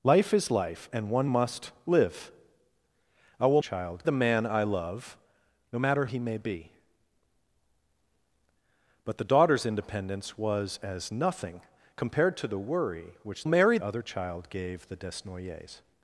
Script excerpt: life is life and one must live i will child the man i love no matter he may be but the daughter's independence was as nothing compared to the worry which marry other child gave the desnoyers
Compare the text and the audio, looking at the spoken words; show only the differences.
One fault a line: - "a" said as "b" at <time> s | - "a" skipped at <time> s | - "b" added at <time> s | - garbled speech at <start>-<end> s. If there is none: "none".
none